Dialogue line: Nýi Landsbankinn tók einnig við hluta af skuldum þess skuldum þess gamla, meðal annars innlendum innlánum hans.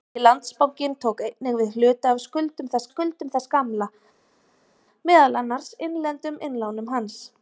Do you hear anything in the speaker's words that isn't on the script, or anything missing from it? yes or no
no